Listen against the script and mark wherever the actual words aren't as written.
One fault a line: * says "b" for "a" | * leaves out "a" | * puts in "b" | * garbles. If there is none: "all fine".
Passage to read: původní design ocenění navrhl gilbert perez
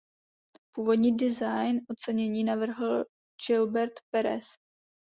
all fine